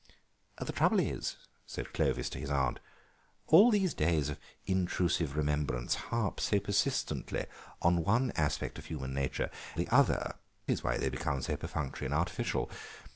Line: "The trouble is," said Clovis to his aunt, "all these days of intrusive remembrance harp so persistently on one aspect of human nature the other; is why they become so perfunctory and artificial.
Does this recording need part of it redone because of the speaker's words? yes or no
no